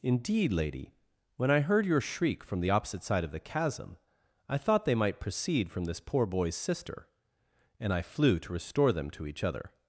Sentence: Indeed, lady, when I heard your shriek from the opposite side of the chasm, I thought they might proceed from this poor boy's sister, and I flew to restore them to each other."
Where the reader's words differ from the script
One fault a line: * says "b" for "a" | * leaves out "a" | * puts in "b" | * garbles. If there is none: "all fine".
all fine